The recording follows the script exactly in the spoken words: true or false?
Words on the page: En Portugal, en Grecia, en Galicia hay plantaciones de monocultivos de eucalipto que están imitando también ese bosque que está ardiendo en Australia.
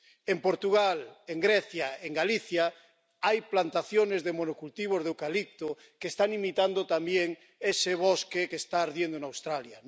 true